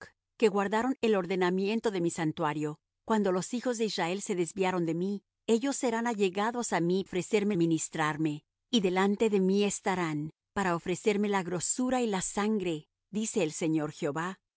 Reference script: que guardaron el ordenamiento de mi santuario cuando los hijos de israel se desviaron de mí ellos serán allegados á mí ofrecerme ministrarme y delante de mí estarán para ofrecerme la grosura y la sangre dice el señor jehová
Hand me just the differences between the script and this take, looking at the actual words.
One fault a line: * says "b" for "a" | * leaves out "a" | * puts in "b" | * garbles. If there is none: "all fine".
all fine